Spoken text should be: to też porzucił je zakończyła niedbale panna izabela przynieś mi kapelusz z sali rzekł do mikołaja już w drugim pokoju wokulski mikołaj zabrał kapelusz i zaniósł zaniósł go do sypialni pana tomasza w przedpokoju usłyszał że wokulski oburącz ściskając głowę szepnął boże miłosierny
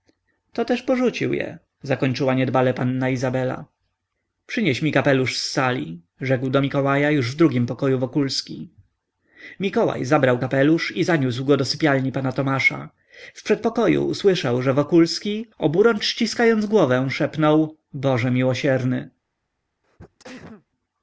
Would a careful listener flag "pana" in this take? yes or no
no